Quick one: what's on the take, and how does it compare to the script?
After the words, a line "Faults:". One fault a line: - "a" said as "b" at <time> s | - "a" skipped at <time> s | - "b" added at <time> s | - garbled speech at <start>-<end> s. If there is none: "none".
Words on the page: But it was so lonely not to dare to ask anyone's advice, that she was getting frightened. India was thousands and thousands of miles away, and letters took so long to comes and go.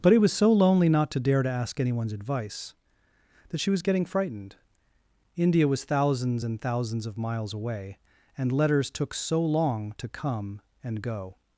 But it was so lonely not to dare to ask anyone's advice, that she was getting frightened. India was thousands and thousands of miles away, and letters took so long to come and go.
Faults:
- "comes" said as "come" at 10.1 s